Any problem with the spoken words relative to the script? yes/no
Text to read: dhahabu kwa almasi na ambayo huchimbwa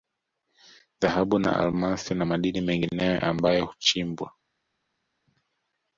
yes